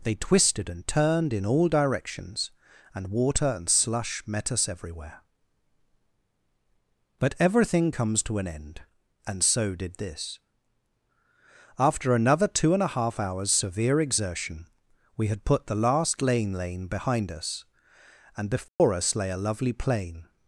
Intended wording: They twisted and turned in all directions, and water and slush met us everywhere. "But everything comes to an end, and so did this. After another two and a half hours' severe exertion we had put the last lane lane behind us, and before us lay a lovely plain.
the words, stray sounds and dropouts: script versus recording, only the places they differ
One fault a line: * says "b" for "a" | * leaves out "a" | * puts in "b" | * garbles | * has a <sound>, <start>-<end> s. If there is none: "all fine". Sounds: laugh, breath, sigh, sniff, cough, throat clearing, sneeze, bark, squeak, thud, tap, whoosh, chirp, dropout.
* has a dropout, 18.7-18.8 s